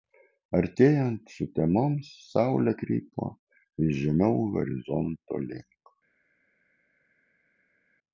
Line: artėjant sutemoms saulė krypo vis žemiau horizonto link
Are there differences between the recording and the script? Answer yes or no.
no